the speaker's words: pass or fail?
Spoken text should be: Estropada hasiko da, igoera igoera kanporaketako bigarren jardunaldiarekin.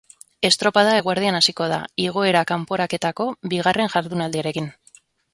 fail